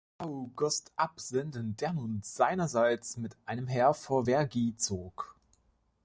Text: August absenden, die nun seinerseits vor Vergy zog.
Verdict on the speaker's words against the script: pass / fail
fail